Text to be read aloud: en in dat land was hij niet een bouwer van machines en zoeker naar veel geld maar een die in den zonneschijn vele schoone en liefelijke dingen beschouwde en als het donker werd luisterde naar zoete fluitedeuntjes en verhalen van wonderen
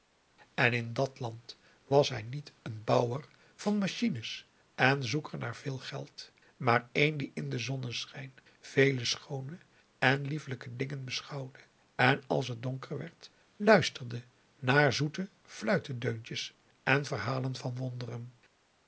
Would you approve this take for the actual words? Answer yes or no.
yes